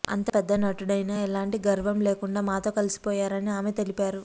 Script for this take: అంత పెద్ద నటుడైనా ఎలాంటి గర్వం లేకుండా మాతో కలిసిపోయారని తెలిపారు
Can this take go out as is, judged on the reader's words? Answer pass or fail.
fail